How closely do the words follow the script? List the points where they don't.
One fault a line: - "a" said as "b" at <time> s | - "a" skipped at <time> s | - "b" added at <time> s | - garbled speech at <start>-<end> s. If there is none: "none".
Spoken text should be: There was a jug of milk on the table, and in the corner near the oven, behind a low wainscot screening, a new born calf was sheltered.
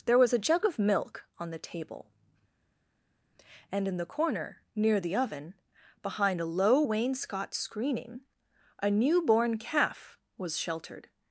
none